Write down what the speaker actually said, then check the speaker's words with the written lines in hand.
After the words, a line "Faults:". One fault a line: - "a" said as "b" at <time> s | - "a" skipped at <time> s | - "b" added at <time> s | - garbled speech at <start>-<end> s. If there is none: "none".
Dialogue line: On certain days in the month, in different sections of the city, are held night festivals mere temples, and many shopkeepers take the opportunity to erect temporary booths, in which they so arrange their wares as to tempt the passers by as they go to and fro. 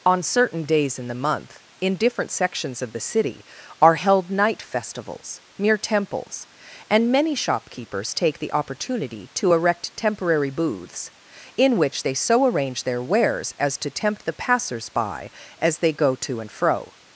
On certain days in the month, in different sections of the city, are held night festivals mere temples, and many shopkeepers take the opportunity to erect temporary booths, in which they so arrange their wares as to tempt the passers by as they go to and fro.
Faults:
none